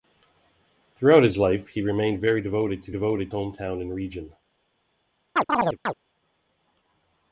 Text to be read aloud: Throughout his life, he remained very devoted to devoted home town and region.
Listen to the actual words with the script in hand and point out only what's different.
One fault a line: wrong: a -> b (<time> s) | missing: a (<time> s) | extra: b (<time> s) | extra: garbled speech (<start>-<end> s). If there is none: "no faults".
no faults